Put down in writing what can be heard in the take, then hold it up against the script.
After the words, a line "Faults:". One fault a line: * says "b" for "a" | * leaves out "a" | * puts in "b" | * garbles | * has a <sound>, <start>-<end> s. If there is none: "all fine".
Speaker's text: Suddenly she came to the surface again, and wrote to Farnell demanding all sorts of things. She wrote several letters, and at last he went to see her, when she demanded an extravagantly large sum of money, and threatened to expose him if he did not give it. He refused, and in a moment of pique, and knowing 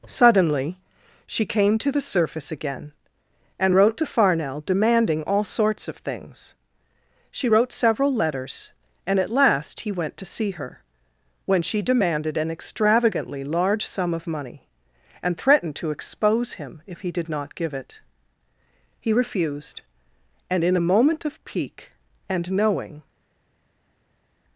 Suddenly she came to the surface again, and wrote to Farnell demanding all sorts of things. She wrote several letters, and at last he went to see her, when she demanded an extravagantly large sum of money, and threatened to expose him if he did not give it. He refused, and in a moment of pique, and knowing
Faults:
all fine